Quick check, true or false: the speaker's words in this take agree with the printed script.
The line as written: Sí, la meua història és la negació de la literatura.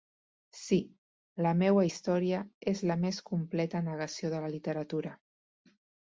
false